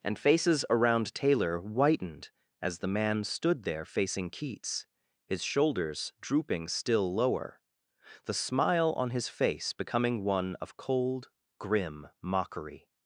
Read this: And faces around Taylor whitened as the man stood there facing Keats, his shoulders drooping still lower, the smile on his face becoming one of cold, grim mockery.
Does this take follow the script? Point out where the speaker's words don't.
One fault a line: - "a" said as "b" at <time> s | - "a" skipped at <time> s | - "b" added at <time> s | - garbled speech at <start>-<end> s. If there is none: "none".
none